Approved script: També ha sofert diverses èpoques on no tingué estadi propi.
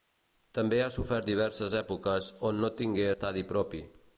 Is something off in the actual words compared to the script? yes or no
no